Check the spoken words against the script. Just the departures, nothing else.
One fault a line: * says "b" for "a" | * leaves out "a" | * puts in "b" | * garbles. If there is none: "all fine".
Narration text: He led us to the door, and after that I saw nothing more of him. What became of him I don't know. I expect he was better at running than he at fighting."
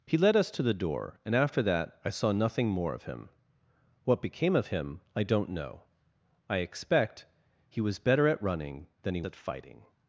all fine